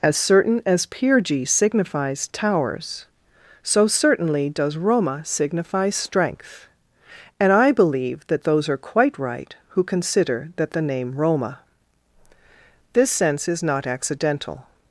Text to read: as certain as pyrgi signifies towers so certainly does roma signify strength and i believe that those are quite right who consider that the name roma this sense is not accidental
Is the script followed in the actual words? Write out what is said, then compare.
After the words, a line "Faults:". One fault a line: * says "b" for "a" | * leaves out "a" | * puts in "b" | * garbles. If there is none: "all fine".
as certain as pyrgi signifies towers so certainly does roma signify strength and i believe that those are quite right who consider that the name roma this sense is not accidental
Faults:
all fine